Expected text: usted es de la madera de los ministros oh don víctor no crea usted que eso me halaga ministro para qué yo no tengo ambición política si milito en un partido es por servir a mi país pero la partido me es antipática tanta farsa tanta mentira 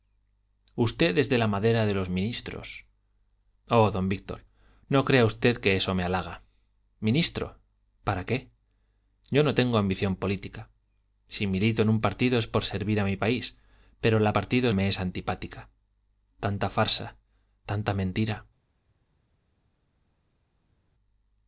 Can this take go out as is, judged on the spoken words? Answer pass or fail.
pass